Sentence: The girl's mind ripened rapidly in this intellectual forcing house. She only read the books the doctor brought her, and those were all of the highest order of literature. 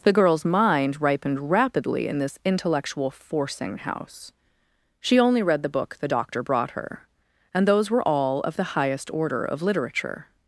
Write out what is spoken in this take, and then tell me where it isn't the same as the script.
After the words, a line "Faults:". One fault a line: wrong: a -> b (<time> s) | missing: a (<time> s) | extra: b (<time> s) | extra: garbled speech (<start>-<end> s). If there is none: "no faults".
The girl's mind ripened rapidly in this intellectual forcing house. She only read the book the doctor brought her, and those were all of the highest order of literature.
Faults:
wrong: books -> book (5.7 s)